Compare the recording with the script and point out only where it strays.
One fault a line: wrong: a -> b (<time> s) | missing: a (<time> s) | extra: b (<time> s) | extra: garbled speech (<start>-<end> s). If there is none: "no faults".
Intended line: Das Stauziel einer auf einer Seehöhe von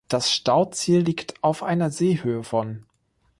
wrong: einer -> liegt (1.0 s)